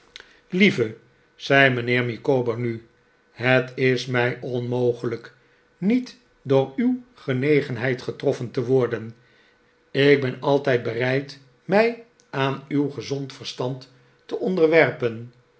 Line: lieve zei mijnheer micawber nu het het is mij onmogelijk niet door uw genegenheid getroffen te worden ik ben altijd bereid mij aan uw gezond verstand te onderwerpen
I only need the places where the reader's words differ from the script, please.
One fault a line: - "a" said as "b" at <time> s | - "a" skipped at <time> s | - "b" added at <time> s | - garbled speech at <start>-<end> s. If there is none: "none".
- "het" skipped at 3.7 s